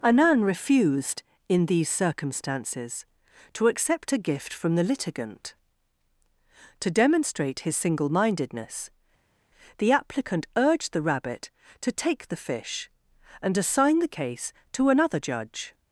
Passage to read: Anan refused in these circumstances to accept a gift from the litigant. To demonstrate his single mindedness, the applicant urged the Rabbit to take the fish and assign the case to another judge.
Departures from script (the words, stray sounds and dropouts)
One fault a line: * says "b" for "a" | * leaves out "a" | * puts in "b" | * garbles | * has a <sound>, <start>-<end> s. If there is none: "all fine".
all fine